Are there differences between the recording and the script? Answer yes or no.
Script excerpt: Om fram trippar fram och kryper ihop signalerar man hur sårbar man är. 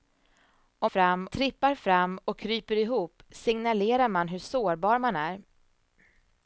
no